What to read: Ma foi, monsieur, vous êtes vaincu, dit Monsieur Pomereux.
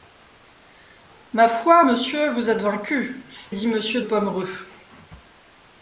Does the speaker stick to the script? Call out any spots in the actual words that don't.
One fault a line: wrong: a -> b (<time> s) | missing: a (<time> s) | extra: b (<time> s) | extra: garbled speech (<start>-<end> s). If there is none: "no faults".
no faults